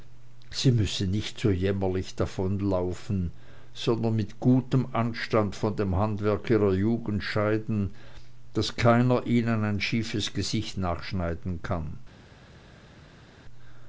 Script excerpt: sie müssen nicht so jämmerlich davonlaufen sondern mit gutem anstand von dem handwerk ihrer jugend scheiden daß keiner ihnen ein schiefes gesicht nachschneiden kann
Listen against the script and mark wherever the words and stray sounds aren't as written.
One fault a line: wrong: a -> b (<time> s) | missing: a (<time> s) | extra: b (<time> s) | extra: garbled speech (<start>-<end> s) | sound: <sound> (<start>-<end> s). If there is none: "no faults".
no faults